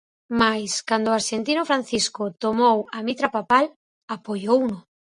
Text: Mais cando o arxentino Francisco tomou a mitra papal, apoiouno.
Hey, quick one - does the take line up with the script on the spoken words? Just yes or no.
yes